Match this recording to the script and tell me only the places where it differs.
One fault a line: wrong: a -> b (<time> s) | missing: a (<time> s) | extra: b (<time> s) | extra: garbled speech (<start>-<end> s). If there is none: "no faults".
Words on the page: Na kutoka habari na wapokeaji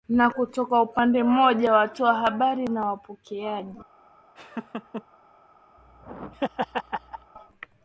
extra: upande mmoja watoa (0.8 s)